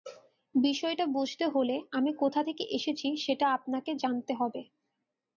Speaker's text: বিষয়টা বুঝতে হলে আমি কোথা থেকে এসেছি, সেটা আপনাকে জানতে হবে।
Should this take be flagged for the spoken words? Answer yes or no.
no